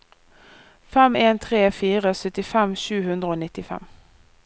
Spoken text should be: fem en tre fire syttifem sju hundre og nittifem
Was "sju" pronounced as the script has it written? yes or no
yes